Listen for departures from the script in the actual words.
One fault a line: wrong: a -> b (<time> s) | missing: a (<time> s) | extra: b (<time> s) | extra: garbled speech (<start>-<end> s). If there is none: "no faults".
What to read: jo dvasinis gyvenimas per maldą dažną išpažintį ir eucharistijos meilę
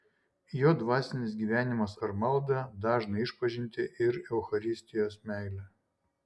no faults